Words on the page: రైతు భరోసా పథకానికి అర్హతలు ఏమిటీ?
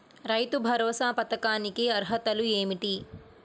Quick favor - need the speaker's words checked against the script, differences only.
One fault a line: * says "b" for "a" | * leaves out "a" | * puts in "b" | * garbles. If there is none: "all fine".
all fine